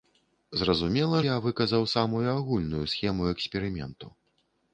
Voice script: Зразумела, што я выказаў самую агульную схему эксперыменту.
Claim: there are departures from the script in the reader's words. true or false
true